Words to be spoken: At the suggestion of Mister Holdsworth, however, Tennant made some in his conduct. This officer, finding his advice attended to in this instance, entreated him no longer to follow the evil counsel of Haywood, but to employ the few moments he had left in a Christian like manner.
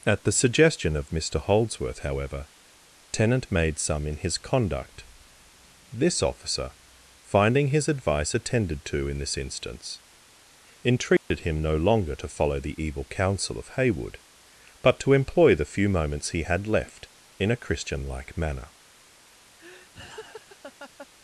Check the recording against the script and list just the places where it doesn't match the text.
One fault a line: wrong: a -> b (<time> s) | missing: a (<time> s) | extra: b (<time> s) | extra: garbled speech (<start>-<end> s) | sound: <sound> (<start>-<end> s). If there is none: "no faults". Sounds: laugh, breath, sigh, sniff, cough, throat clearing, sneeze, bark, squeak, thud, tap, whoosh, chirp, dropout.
sound: dropout (11.2-11.3 s)
sound: laugh (19.6-21.1 s)